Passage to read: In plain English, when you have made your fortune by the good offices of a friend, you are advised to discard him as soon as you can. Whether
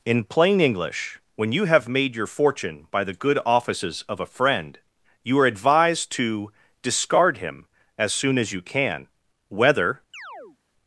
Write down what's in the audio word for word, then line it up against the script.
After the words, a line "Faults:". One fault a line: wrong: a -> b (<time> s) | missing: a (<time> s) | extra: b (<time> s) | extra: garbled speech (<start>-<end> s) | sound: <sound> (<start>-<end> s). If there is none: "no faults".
In plain English, when you have made your fortune by the good offices of a friend, you are advised to discard him as soon as you can. Whether
Faults:
sound: chirp (10.1-10.6 s)